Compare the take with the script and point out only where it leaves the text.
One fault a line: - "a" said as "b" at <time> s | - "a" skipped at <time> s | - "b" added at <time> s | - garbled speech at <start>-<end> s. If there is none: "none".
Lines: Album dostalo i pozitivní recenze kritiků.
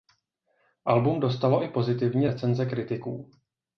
none